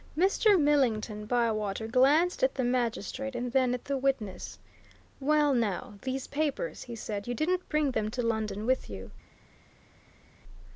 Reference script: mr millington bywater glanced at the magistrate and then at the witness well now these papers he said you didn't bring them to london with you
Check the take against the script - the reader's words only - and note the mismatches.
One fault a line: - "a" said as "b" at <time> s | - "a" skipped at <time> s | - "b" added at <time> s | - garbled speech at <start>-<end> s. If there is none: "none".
none